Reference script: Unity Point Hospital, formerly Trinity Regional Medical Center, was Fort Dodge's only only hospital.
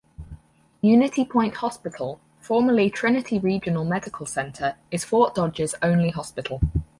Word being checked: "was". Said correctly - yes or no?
no